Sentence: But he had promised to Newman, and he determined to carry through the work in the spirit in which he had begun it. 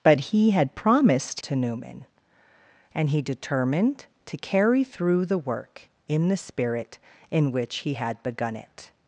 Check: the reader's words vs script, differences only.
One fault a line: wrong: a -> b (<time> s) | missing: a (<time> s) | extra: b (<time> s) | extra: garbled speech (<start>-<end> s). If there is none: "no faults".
no faults